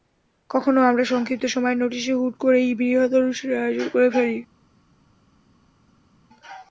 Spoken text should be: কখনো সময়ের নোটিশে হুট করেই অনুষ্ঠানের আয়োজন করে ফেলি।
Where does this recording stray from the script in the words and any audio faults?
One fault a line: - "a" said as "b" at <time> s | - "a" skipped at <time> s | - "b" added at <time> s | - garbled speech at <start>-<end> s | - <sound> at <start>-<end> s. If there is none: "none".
- "আমরা সংক্ষিপ্ত" added at 0.8 s
- "বৃহৎ" added at 2.8 s